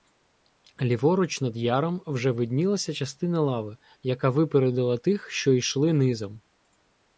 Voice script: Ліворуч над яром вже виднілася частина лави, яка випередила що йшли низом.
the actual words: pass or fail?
fail